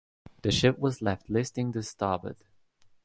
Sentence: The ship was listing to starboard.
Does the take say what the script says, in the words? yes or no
no